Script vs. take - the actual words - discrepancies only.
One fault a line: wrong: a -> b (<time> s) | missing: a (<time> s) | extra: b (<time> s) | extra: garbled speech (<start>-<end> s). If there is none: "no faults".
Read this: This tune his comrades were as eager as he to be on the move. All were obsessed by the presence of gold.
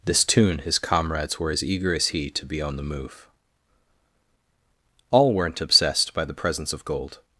wrong: were -> weren't (5.3 s)